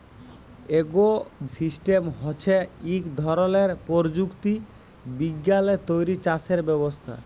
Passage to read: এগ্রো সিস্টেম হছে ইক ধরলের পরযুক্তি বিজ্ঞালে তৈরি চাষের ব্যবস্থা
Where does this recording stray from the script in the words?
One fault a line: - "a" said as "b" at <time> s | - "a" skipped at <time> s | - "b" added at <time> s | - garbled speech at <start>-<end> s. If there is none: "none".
none